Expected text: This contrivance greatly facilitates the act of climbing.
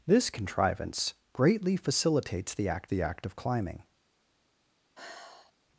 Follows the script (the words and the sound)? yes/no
no